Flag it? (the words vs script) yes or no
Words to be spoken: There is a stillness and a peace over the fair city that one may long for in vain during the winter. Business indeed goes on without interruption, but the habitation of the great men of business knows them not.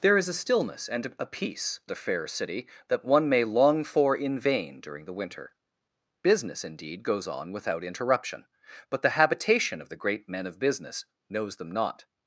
yes